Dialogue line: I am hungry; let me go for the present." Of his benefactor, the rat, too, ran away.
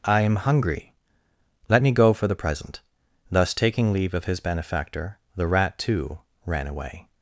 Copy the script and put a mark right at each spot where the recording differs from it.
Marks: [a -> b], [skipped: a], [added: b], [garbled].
I am hungry; let me go for the present." [added: Thus taking leave] Of his benefactor, the rat, too, ran away.